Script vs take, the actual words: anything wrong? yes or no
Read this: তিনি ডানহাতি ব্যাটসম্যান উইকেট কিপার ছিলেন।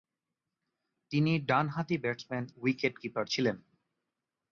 no